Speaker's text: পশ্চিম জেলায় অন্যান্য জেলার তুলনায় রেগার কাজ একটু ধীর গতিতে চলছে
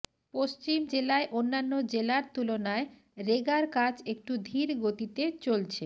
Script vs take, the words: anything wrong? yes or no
no